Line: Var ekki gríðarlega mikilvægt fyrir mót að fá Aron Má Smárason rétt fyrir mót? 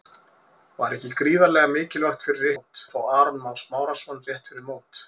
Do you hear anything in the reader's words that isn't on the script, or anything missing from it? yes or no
no